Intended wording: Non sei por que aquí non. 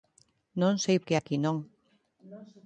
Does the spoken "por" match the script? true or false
false